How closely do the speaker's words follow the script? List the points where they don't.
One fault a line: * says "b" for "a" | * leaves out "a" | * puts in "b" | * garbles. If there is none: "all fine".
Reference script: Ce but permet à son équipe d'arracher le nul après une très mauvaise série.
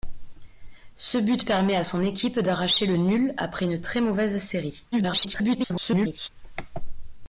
* garbles